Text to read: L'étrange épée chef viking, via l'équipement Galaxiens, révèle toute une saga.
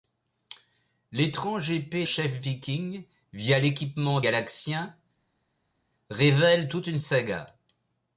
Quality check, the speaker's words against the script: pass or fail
pass